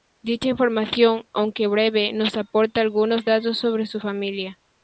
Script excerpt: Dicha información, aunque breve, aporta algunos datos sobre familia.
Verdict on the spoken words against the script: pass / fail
fail